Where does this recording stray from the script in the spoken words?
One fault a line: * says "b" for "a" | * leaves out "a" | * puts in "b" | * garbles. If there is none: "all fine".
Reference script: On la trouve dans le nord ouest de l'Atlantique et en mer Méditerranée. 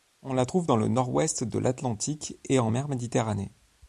all fine